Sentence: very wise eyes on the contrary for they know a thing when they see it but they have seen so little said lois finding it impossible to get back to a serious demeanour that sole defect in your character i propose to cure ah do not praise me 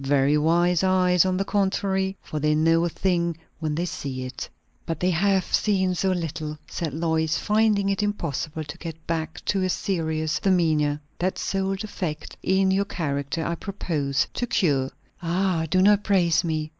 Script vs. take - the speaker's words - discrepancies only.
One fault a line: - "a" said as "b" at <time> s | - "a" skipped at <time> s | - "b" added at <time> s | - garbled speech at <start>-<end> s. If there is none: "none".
none